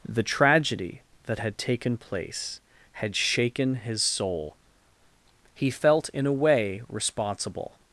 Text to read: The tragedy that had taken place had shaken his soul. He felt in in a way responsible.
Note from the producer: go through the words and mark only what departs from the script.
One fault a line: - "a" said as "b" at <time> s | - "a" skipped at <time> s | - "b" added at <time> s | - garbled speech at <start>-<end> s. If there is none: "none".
- "in" skipped at 6.3 s